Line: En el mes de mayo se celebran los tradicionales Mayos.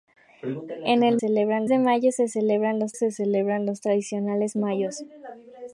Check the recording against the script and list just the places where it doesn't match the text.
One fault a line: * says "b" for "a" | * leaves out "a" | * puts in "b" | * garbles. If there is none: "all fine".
* says "celebran" for "mes"
* puts in "se celebran los"